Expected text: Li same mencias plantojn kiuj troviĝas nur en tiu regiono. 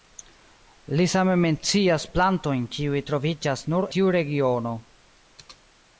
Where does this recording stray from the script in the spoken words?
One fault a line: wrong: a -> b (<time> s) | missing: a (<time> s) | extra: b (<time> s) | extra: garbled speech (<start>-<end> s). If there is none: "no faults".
missing: en (3.9 s)